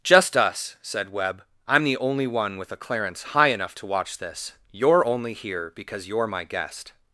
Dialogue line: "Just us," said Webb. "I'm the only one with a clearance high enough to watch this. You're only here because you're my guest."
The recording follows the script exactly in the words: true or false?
true